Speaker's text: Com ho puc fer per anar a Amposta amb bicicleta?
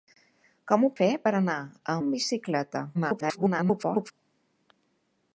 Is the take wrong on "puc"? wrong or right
wrong